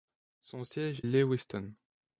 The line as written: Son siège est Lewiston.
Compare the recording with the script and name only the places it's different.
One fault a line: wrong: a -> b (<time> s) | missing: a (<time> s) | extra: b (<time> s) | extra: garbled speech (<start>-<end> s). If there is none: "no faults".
missing: est (1.0 s)